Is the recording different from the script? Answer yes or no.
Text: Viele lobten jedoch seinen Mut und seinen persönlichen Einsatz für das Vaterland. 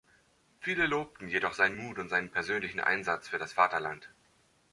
no